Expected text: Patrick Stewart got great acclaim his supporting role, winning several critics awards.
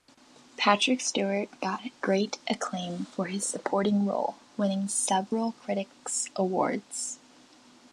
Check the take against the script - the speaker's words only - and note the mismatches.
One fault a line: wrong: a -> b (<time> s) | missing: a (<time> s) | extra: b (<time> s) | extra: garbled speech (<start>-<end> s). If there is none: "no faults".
extra: for (3.0 s)